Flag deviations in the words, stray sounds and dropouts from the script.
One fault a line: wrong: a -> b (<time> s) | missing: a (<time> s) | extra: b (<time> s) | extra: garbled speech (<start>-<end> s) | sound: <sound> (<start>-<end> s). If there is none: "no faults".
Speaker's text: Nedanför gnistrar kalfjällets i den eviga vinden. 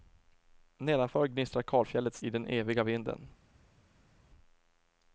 no faults